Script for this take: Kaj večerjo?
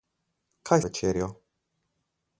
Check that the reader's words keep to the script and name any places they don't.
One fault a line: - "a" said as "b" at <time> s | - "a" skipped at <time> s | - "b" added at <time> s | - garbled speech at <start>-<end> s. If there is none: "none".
none